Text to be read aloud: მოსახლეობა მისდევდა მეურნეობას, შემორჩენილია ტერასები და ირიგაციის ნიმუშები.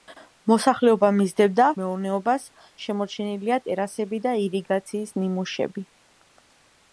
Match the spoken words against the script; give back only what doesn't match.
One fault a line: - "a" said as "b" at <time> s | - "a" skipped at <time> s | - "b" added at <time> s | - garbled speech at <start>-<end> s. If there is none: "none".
none